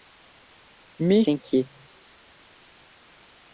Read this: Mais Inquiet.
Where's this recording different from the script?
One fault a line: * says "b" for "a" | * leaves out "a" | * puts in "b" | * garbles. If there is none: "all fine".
all fine